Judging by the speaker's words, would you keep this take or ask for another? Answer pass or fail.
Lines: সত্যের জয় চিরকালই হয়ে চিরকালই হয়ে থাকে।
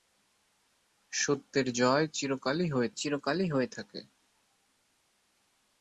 pass